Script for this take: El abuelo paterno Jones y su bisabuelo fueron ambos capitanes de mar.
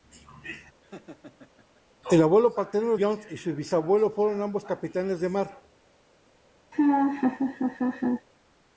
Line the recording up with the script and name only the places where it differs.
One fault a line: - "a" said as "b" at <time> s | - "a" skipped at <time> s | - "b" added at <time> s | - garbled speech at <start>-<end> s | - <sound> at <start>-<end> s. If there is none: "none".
- laugh at 0.8-1.8 s
- laugh at 6.7-8.3 s